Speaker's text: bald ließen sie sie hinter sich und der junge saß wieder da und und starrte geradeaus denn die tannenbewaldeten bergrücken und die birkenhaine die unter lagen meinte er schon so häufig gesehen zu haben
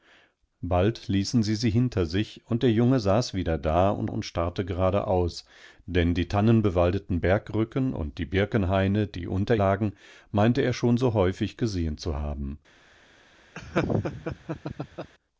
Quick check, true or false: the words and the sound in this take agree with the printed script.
false